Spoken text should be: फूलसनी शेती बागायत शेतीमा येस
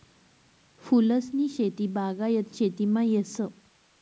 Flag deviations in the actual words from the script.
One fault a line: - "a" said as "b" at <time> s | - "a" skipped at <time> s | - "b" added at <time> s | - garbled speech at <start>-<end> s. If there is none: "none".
none